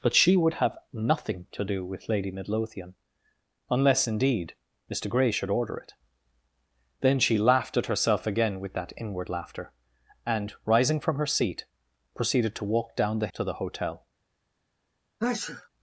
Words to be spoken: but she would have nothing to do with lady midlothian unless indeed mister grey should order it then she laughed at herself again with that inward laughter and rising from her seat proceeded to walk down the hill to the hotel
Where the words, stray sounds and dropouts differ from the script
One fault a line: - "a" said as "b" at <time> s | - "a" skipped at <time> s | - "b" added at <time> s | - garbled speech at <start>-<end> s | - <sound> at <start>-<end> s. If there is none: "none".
- "hill" skipped at 13.3 s
- sneeze at 15.2-15.7 s